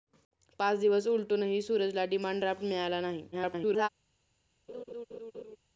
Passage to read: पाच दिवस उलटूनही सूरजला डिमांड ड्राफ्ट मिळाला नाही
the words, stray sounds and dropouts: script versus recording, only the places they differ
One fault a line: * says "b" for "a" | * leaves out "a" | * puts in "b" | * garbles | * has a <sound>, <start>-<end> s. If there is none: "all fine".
* garbles
* has a laugh, 4.7-5.6 s